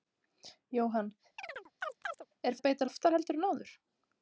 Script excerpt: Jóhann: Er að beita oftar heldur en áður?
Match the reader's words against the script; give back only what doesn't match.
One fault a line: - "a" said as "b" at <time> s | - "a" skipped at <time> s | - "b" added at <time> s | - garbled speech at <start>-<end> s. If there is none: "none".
none